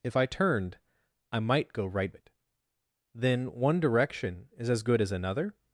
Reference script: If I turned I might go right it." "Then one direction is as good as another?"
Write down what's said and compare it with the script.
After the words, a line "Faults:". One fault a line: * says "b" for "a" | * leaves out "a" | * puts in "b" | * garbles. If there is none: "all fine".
If I turned I might go right it." "Then one direction is as good as another?"
Faults:
all fine